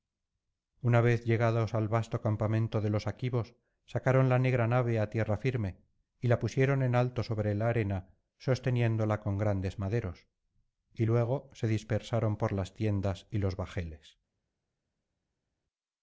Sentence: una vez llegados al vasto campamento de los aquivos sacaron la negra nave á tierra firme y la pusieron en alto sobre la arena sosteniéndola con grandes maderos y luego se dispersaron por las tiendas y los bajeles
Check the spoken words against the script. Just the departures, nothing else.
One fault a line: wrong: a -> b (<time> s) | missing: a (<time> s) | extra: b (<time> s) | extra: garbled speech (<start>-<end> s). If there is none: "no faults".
no faults